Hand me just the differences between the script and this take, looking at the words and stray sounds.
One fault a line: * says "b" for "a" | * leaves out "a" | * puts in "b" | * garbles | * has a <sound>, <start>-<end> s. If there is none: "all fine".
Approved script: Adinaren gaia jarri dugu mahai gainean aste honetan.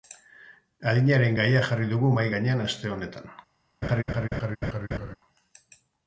* has a laugh, 3.8-5.2 s